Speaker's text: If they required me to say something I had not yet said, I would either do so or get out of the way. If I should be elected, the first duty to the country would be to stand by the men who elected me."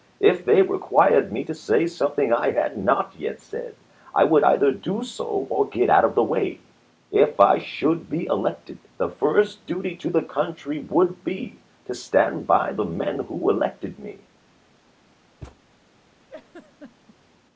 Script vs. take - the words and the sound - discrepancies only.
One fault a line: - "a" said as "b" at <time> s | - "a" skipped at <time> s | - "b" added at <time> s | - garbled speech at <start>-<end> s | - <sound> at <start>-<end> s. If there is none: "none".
- thud at 15.4-15.6 s
- laugh at 16.3-17.2 s